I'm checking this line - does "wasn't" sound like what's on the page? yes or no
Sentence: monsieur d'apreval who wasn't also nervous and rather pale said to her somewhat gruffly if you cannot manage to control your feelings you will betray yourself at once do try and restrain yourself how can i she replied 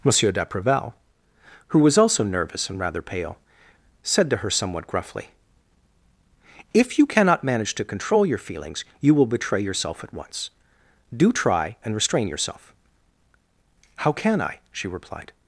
no